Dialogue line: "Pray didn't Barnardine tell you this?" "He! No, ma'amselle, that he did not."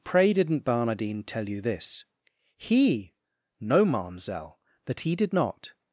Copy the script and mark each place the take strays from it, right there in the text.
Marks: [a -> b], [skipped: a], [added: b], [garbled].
"Pray didn't Barnardine tell you this?" "He! No, ma'amselle, that he did not."